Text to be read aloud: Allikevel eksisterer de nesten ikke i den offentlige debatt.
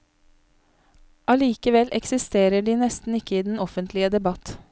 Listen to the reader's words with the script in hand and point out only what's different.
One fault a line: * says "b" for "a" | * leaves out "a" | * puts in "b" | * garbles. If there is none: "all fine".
all fine